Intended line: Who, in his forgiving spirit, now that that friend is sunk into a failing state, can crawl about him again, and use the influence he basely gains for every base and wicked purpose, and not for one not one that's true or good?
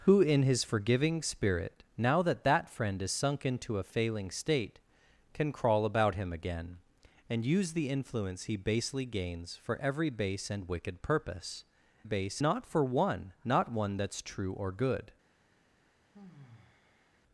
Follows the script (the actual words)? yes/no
no